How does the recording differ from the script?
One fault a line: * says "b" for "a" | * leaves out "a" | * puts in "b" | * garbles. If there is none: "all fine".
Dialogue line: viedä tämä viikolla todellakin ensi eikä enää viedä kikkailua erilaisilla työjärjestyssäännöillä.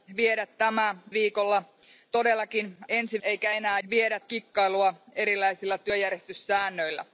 all fine